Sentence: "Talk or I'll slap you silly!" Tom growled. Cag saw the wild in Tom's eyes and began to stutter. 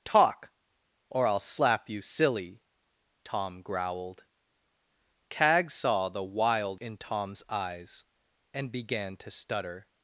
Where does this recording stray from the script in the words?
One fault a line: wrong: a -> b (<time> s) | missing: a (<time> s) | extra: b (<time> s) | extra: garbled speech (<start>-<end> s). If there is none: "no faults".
no faults